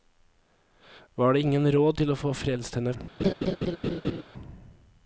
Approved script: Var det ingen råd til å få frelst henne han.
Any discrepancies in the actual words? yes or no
no